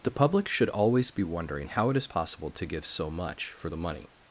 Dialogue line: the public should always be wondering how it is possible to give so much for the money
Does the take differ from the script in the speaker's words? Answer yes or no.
no